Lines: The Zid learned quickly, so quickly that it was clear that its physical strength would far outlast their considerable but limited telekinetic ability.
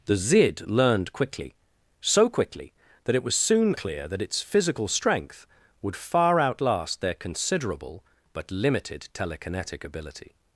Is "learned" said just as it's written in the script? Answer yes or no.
yes